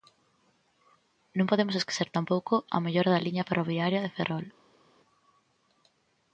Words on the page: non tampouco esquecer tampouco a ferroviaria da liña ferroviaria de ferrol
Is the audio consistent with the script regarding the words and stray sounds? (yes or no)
no